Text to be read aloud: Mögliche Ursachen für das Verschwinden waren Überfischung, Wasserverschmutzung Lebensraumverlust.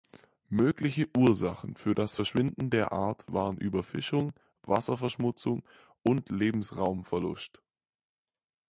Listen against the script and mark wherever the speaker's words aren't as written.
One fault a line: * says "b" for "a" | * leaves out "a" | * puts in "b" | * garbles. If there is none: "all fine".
* puts in "der Art"
* puts in "und"